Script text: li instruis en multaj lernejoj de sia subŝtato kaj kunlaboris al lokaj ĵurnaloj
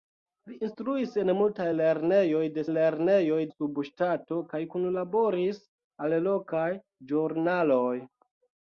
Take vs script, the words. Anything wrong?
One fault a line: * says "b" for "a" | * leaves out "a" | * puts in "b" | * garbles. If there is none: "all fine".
* says "lernejoj" for "sia"